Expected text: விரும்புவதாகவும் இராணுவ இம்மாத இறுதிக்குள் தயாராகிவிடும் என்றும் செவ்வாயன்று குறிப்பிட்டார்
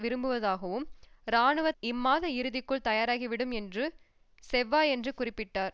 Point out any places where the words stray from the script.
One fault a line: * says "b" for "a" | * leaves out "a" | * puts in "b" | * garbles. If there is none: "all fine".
all fine